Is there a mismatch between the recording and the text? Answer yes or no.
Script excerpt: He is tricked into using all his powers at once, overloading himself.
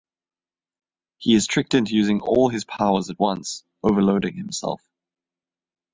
no